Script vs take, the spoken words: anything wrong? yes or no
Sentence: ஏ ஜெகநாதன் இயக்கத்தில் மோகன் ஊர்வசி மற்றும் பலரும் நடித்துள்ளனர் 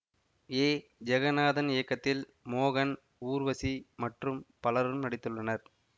no